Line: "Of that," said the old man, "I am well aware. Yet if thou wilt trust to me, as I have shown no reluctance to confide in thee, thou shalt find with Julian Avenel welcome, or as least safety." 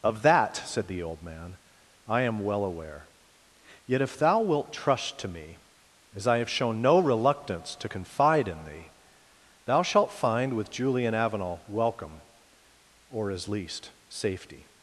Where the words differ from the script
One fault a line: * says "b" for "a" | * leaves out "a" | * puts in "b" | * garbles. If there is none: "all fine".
all fine